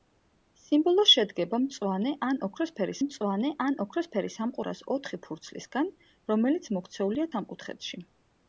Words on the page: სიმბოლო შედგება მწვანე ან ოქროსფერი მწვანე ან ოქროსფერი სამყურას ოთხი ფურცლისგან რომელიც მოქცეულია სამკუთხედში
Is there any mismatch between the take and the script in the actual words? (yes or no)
no